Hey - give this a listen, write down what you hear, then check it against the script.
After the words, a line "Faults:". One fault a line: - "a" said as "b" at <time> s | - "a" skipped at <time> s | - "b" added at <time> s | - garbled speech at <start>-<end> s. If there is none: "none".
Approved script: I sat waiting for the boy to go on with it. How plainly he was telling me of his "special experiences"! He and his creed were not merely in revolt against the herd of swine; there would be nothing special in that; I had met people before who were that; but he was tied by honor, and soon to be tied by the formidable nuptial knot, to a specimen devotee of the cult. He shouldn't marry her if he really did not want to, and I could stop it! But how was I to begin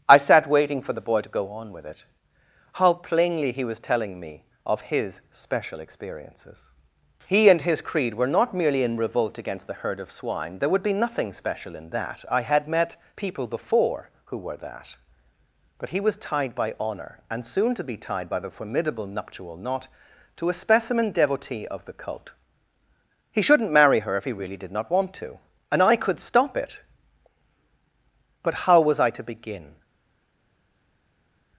I sat waiting for the boy to go on with it. How plainly he was telling me of his "special experiences"! He and his creed were not merely in revolt against the herd of swine; there would be nothing special in that; I had met people before who were that; but he was tied by honor, and soon to be tied by the formidable nuptial knot, to a specimen devotee of the cult. He shouldn't marry her if he really did not want to, and I could stop it! But how was I to begin
Faults:
none